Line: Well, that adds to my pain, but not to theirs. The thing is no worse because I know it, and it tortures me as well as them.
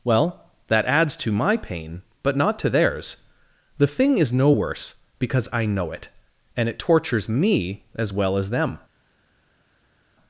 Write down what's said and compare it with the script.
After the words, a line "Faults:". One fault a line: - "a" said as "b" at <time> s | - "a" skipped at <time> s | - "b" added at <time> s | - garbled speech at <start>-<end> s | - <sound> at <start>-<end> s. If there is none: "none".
Well, that adds to my pain, but not to theirs. The thing is no worse because I know it, and it tortures me as well as them.
Faults:
none